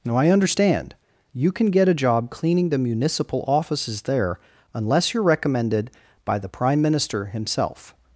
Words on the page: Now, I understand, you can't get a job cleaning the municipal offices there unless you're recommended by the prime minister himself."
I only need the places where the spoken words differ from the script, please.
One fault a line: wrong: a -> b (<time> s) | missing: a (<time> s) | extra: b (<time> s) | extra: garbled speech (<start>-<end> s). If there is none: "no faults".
wrong: can't -> can (1.5 s)